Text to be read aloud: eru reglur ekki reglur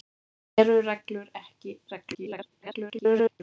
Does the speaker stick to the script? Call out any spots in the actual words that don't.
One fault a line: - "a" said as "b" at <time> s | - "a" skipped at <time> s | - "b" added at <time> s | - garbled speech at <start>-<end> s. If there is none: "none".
- garbled speech at 2.1-3.4 s